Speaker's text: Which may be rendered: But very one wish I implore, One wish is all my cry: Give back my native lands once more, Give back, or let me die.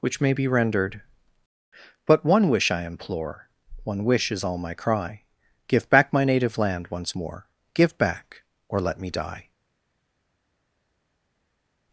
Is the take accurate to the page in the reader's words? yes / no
no